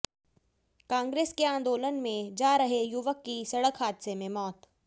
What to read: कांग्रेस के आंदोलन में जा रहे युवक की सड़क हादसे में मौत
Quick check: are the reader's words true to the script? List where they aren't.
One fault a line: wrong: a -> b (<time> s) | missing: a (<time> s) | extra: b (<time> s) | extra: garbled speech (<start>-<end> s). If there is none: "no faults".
no faults